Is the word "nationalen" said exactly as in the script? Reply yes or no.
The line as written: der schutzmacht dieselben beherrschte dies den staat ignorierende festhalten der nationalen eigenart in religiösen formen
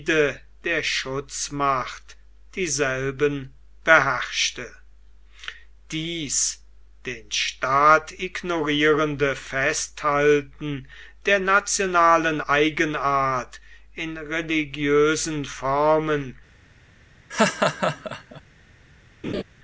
yes